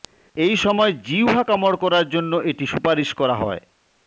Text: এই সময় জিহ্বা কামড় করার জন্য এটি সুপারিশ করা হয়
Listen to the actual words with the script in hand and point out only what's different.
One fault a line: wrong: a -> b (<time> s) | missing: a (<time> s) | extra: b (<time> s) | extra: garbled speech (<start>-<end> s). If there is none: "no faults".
no faults